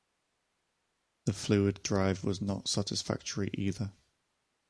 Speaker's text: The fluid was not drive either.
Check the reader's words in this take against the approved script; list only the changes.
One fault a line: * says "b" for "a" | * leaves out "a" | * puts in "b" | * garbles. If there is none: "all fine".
* puts in "drive"
* says "satisfactory" for "drive"